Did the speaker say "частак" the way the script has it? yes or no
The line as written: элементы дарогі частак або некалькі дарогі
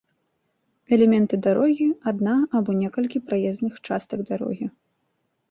no